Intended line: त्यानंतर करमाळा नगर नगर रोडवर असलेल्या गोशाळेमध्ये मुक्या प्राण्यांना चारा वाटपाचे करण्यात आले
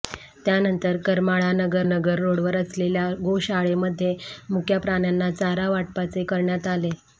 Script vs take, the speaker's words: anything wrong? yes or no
no